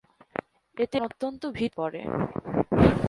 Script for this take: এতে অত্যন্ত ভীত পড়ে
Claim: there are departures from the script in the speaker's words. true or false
false